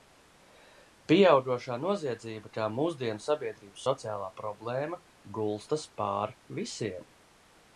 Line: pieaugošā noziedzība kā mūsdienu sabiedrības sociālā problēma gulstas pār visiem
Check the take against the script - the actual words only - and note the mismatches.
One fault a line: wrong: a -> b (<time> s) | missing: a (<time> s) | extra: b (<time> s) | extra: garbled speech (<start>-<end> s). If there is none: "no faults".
no faults